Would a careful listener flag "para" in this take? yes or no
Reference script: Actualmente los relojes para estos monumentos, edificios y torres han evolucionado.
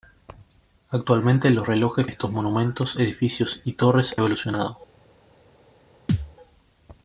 yes